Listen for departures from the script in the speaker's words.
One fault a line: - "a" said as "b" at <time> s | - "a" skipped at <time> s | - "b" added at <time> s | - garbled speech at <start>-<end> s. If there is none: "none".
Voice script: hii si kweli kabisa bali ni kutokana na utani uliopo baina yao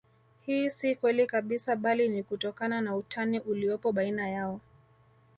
none